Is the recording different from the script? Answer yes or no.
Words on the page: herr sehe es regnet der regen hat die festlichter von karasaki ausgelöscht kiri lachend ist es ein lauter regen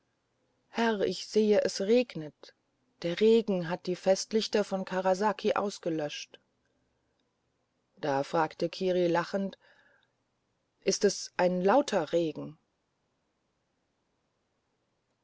yes